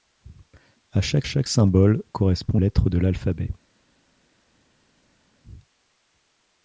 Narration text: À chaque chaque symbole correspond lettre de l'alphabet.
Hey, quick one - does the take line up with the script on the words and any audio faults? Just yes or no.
yes